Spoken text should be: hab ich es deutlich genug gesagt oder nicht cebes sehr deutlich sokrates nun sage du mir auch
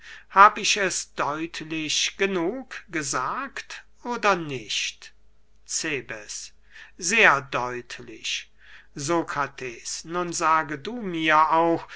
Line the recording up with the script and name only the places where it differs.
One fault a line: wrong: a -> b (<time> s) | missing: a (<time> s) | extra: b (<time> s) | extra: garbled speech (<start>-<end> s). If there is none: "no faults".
no faults